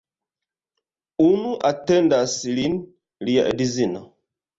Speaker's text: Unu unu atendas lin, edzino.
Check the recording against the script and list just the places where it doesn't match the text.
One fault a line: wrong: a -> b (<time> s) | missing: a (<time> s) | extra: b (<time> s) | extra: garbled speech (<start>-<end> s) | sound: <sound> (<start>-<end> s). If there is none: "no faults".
missing: unu (1.5 s)
extra: lia (3.3 s)